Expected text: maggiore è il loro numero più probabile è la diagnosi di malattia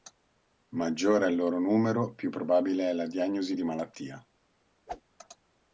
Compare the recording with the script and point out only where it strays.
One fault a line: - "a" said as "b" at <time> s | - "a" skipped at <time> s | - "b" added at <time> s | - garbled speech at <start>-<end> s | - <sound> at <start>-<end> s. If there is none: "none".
- whoosh at 4.9-5.0 s